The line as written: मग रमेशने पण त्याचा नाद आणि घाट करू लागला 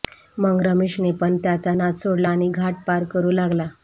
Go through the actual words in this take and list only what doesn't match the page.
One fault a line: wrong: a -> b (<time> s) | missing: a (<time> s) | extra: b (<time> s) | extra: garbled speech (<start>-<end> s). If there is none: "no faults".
extra: सोडला (2.0 s)
extra: पार (2.9 s)